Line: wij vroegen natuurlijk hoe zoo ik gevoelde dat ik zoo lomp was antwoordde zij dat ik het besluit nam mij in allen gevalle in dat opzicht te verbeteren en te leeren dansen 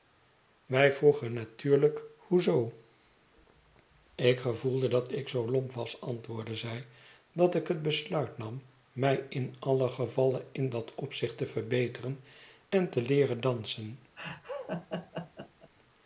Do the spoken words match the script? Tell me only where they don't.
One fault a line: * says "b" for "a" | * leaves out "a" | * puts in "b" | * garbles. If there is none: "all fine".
all fine